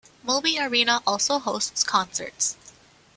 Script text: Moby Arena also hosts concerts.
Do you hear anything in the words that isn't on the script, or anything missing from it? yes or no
no